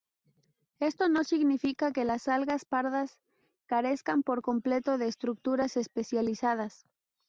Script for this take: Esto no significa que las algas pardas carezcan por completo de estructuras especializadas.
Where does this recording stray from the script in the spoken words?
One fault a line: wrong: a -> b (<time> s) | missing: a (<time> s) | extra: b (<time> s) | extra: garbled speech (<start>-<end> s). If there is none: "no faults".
no faults